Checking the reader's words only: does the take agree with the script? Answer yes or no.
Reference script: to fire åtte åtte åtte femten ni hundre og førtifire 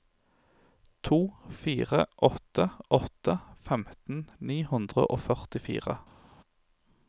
no